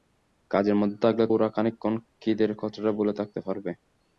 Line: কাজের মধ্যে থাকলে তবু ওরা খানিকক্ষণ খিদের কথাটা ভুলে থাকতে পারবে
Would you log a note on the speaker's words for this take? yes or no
yes